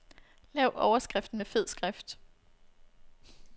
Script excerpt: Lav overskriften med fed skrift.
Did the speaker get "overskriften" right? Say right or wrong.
right